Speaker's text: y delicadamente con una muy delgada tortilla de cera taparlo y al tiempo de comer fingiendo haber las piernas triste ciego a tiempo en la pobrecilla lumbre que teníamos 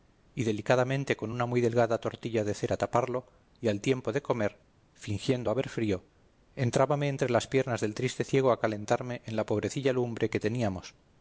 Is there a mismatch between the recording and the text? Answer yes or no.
yes